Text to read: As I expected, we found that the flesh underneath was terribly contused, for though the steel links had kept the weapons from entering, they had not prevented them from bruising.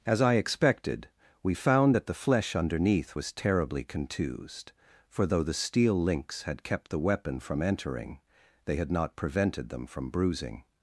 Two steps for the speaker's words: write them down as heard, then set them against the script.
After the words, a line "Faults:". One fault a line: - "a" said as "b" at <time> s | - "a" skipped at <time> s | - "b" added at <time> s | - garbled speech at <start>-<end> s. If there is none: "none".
As I expected, we found that the flesh underneath was terribly contused, for though the steel links had kept the weapon from entering, they had not prevented them from bruising.
Faults:
- "weapons" said as "weapon" at 7.0 s